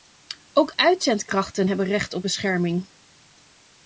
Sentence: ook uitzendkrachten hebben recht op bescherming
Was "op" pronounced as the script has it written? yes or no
yes